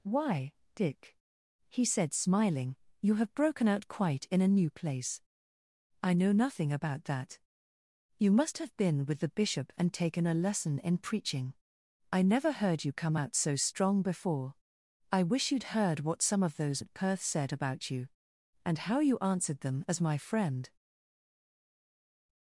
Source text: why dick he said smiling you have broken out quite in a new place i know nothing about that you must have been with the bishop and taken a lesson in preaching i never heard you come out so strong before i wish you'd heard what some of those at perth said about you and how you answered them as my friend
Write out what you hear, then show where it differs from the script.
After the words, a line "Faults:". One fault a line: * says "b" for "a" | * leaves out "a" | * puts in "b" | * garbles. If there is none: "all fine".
why dick he said smiling you have broken out quite in a new place i know nothing about that you must have been with the bishop and taken a lesson in preaching i never heard you come out so strong before i wish you'd heard what some of those at perth said about you and how you answered them as my friend
Faults:
all fine